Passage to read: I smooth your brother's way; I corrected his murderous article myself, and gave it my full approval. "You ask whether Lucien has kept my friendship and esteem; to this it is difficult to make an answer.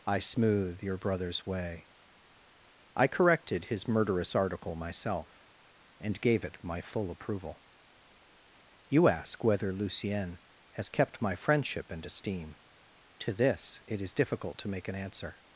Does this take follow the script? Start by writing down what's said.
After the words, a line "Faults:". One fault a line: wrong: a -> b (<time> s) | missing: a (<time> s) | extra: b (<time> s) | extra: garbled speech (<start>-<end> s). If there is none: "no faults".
I smooth your brother's way; I corrected his murderous article myself, and gave it my full approval. "You ask whether Lucien has kept my friendship and esteem; to this it is difficult to make an answer.
Faults:
no faults